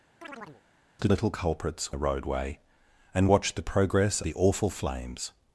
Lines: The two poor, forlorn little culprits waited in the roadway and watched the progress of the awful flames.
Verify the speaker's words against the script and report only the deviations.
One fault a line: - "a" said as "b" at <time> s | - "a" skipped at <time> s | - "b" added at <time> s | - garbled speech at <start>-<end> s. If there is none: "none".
- "two poor forlorn" skipped at 1.1 s
- "waited in" skipped at 1.9 s
- "of" skipped at 4.2 s